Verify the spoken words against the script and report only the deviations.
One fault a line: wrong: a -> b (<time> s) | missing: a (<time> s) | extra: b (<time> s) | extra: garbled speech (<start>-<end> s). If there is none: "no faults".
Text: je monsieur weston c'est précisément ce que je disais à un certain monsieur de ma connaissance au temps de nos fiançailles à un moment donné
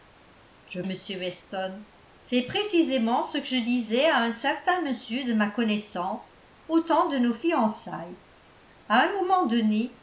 no faults